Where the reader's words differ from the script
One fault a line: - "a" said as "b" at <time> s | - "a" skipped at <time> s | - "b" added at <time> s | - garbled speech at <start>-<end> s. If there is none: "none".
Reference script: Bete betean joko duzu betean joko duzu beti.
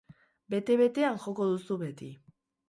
- "betean joko duzu" skipped at 1.8 s